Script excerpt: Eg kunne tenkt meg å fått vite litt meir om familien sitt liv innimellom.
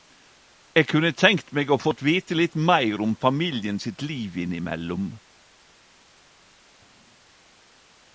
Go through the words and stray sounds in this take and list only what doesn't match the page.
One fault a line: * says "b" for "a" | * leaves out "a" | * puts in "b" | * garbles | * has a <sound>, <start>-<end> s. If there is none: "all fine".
all fine